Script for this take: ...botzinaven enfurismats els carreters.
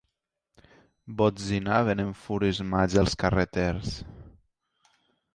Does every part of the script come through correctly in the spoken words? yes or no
yes